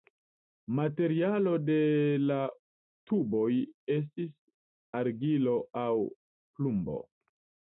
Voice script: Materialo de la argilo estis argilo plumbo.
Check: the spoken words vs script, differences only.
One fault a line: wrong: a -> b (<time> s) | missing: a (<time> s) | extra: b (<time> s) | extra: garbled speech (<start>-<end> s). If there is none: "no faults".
wrong: argilo -> tuboj (3.1 s)
extra: aŭ (5.8 s)